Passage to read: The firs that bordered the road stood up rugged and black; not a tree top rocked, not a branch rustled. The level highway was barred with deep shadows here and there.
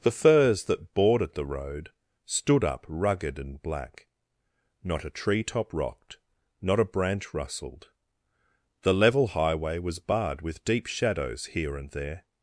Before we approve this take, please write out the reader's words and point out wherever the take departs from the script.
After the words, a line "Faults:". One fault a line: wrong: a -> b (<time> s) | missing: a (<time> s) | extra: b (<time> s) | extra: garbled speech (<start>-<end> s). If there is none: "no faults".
The firs that bordered the road stood up rugged and black; not a tree top rocked, not a branch rustled. The level highway was barred with deep shadows here and there.
Faults:
no faults